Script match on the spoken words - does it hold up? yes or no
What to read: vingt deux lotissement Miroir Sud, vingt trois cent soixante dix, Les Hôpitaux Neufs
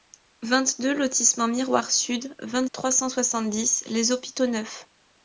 yes